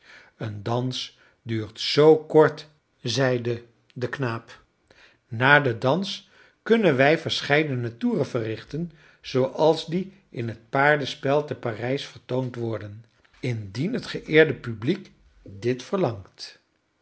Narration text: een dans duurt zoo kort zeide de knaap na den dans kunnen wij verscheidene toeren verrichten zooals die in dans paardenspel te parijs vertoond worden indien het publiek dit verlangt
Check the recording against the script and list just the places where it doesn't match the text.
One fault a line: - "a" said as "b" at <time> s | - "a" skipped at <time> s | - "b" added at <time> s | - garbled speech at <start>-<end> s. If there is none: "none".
- "dans" said as "het" at 10.5 s
- "geëerde" added at 14.1 s